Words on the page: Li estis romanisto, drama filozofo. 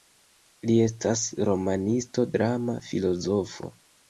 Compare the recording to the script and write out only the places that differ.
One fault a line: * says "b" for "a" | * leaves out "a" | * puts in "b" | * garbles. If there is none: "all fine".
* says "estas" for "estis"